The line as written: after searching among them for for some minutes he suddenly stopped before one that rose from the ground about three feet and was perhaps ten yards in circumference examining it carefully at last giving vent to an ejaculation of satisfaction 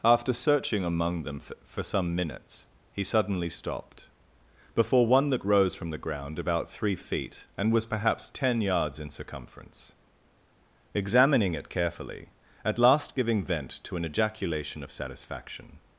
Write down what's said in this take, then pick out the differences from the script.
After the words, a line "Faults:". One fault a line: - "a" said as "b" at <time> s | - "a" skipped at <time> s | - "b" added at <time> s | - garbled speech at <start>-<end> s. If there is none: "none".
after searching among them for for some minutes he suddenly stopped before one that rose from the ground about three feet and was perhaps ten yards in circumference examining it carefully at last giving vent to an ejaculation of satisfaction
Faults:
none